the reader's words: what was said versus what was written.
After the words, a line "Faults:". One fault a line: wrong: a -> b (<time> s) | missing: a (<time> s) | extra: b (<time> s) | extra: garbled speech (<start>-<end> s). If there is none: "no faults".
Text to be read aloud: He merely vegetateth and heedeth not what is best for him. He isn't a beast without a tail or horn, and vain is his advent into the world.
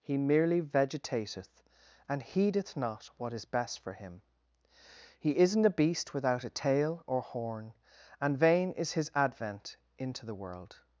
He merely vegetateth and heedeth not what is best for him. He isn't a beast without a tail or horn, and vain is his advent into the world.
Faults:
no faults